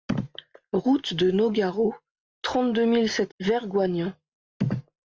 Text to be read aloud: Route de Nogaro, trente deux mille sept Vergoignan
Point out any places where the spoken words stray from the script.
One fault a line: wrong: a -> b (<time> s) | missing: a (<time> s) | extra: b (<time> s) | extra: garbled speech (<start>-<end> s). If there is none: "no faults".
no faults